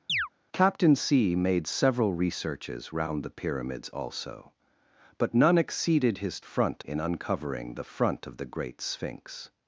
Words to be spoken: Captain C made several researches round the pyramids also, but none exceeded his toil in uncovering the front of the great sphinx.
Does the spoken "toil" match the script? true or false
false